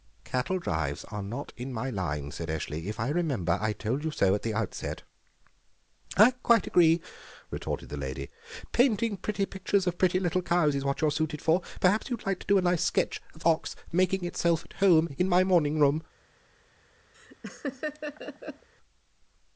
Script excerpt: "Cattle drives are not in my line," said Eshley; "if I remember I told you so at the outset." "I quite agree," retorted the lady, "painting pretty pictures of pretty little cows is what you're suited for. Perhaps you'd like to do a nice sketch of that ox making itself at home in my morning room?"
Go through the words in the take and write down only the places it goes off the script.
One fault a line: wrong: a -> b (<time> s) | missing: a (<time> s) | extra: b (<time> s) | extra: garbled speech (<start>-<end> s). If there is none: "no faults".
missing: that (13.4 s)